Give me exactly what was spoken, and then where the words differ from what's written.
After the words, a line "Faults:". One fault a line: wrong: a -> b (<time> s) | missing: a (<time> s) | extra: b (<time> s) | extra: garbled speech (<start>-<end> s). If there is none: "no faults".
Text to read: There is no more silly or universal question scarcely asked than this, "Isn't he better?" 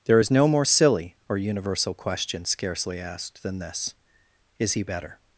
There is no more silly or universal question scarcely asked than this, "Is he better?"
Faults:
wrong: Isn't -> Is (4.6 s)